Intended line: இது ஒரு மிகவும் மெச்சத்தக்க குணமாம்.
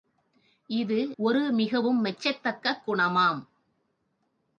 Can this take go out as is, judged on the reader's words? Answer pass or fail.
pass